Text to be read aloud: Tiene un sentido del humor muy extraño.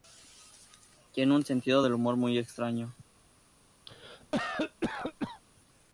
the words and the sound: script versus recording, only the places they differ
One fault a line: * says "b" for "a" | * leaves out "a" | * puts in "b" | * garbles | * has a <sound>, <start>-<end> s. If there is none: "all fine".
* has a cough, 3.9-5.4 s